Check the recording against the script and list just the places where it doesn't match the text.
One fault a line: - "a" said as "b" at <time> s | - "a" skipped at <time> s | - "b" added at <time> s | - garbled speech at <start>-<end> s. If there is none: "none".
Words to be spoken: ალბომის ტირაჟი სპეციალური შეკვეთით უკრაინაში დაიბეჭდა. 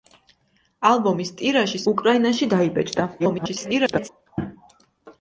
- "სპეციალური შეკვეთით" skipped at 1.8 s
- garbled speech at 3.2-4.1 s